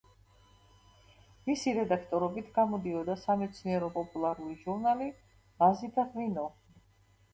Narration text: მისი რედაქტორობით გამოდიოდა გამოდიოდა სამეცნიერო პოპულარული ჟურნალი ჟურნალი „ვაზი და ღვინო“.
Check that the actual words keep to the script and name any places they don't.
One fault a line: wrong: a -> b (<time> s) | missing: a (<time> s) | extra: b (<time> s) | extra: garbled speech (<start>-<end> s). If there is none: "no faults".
missing: გამოდიოდა (3.2 s)
missing: ჟურნალი (5.1 s)